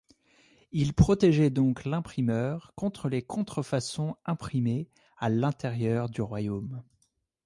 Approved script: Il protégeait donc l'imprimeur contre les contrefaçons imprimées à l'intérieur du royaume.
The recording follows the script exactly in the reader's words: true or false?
true